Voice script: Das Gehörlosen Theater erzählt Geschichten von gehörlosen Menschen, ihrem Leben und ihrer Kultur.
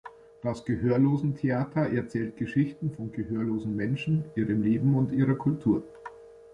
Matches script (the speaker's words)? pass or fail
pass